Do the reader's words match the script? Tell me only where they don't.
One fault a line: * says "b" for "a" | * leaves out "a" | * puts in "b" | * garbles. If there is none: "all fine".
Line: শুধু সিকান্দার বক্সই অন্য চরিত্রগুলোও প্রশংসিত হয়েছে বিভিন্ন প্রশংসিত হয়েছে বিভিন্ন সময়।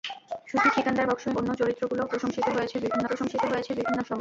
all fine